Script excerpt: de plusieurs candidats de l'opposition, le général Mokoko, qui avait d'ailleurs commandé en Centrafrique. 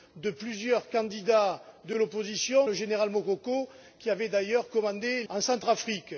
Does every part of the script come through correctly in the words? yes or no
yes